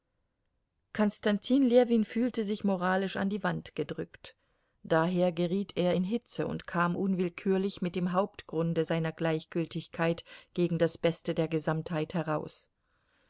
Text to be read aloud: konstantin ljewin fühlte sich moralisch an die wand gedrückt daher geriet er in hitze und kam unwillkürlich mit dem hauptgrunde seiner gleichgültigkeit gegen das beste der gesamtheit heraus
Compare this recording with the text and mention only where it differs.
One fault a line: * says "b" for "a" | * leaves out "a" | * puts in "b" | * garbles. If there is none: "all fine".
all fine